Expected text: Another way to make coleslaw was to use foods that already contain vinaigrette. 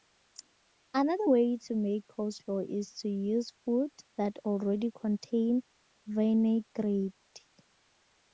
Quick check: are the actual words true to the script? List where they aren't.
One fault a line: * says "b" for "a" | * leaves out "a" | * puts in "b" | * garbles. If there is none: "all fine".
* says "is" for "was"